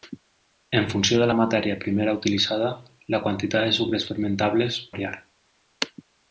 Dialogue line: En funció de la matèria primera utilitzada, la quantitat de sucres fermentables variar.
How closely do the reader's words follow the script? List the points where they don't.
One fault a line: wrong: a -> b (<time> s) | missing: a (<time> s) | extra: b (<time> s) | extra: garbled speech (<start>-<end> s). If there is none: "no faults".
no faults